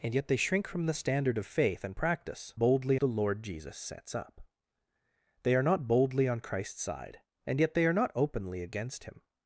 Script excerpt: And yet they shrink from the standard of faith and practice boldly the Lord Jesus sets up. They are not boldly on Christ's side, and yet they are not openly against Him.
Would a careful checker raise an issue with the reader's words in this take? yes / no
no